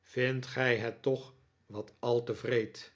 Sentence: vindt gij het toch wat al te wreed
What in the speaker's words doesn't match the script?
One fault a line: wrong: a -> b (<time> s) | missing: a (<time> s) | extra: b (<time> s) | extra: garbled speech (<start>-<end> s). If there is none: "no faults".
no faults